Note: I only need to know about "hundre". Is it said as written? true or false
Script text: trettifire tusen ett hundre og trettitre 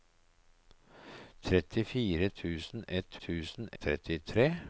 false